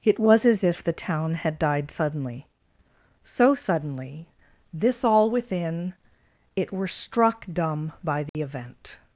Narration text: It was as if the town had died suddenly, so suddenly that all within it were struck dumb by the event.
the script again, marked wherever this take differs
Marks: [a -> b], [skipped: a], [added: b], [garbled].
It was as if the town had died suddenly, so suddenly [that -> this] all within it were struck dumb by the event.